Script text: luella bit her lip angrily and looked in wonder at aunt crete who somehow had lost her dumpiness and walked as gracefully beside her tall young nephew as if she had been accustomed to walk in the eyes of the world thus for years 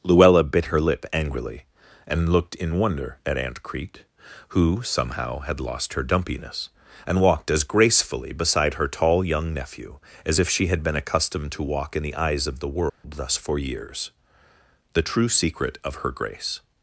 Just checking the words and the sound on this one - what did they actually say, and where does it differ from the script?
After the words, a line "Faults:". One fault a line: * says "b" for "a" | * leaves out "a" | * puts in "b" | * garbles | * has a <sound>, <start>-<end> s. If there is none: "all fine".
luella bit her lip angrily and looked in wonder at aunt crete who somehow had lost her dumpiness and walked as gracefully beside her tall young nephew as if she had been accustomed to walk in the eyes of the world thus for years the true secret of her grace
Faults:
* has a dropout, 12.9-13.0 s
* puts in "the true secret of her grace"